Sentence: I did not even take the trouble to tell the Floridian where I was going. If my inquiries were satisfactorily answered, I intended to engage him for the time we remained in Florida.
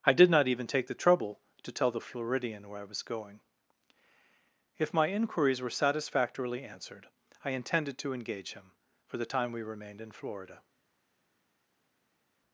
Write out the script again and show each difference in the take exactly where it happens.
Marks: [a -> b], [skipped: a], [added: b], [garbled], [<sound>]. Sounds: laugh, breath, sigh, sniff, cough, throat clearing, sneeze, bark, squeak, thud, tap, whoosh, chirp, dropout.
I did not even take the trouble to tell the Floridian where I was going. If my inquiries were satisfactorily answered, I intended to engage him for the time we remained in Florida.